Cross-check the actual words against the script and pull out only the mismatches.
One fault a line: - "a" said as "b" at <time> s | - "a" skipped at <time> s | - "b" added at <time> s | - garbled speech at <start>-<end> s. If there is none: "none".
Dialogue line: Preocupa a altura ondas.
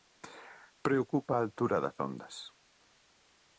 - "das" added at 1.8 s